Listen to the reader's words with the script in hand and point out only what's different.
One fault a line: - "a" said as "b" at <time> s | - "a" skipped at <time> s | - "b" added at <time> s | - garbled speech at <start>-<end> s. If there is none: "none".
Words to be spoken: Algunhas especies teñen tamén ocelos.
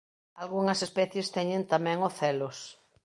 none